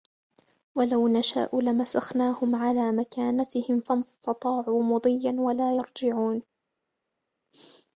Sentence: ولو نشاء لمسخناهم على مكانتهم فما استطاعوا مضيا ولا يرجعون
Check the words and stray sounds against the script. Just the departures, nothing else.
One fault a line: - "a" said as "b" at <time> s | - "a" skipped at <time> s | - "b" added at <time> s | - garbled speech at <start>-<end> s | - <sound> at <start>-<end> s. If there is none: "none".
none